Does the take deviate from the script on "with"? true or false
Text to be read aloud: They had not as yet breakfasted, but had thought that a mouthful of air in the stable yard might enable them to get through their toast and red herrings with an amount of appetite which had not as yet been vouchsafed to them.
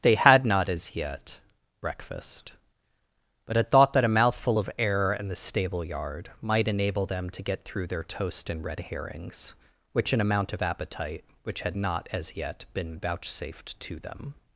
true